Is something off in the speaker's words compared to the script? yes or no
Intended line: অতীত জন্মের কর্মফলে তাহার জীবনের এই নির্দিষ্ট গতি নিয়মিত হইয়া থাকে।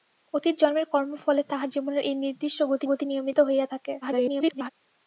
yes